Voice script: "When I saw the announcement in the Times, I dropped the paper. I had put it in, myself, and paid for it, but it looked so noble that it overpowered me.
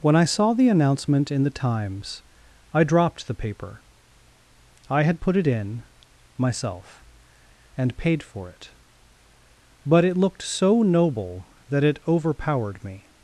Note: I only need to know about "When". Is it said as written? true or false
true